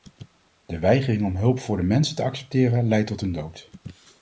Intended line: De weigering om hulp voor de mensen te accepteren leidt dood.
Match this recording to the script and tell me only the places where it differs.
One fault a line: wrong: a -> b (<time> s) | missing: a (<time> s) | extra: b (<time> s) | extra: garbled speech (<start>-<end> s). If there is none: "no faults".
extra: tot hun (3.1 s)